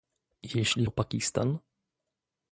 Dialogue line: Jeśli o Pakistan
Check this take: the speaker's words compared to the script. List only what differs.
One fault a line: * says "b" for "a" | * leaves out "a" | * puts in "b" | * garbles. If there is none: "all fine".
all fine